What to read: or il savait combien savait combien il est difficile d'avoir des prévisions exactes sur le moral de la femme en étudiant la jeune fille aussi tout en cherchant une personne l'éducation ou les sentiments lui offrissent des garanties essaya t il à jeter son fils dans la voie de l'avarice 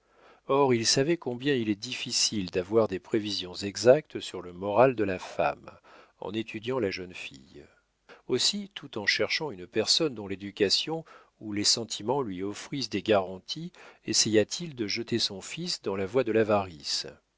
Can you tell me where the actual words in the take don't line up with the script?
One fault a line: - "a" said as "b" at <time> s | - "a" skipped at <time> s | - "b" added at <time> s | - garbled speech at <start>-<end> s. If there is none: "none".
- "savait combien" skipped at 1.5 s
- "dont" added at 10.1 s
- "à" said as "de" at 14.8 s